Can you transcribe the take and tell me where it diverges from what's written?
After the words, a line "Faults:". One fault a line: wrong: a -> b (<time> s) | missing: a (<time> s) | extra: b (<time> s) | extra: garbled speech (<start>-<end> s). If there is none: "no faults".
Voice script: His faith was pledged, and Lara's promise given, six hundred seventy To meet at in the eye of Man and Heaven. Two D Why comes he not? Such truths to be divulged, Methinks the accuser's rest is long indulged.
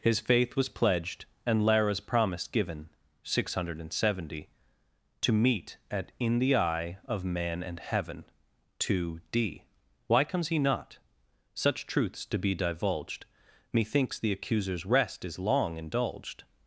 His faith was pledged, and Lara's promise given, six hundred seventy To meet at in the eye of Man and Heaven. Two D Why comes he not? Such truths to be divulged, Methinks the accuser's rest is long indulged.
Faults:
no faults